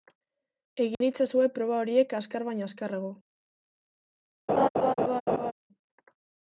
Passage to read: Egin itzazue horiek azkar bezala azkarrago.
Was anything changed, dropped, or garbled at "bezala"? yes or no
yes